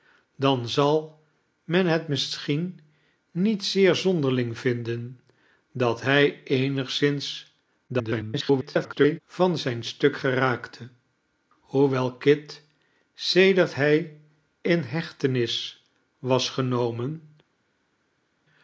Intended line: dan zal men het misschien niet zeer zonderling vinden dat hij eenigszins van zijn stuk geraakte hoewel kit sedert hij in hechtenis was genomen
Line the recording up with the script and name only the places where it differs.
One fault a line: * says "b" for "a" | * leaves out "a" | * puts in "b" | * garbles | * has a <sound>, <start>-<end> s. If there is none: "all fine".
* garbles